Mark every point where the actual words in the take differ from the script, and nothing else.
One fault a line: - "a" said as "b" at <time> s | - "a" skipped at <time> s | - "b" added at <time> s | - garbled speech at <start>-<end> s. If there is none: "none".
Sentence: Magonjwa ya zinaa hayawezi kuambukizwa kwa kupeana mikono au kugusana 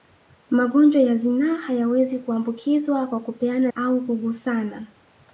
- "mikono" skipped at 3.7 s